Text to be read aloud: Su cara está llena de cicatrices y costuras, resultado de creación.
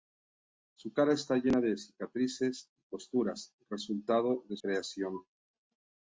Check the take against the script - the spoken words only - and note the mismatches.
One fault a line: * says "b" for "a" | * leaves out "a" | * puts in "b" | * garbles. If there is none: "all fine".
all fine